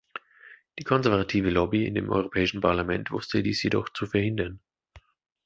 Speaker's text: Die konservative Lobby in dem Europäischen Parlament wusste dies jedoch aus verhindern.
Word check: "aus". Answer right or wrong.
wrong